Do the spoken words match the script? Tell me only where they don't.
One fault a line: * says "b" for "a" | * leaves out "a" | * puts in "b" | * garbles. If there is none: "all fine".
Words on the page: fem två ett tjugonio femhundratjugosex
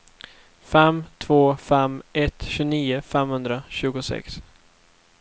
* puts in "fem"